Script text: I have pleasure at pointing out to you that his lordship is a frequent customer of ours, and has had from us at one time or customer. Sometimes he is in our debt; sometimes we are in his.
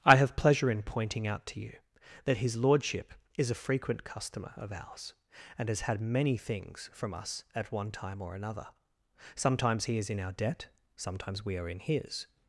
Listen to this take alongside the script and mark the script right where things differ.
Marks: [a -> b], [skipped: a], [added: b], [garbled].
I have pleasure [at -> in] pointing out to you that his lordship is a frequent customer of ours, and has had [added: many things] from us at one time or [customer. -> another] Sometimes he is in our debt; sometimes we are in his.